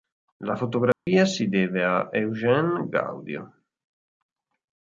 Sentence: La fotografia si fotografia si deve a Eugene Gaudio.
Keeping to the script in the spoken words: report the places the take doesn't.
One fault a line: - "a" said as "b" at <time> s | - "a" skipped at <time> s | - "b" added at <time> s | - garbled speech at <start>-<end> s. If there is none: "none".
- "fotografia si" skipped at 1.5 s